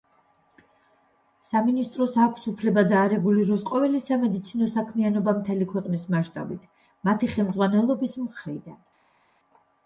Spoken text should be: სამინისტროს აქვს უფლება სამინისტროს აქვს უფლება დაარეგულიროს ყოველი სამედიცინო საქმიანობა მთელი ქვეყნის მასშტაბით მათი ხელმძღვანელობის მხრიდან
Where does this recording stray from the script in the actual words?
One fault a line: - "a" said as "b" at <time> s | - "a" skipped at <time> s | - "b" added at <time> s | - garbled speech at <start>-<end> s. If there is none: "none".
- "სამინისტროს აქვს უფლება" skipped at 2.9 s